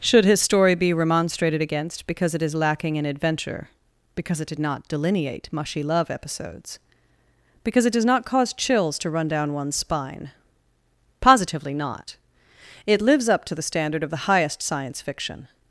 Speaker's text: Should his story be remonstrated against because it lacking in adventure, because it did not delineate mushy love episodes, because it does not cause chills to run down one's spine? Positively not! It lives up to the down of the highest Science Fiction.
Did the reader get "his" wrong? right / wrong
right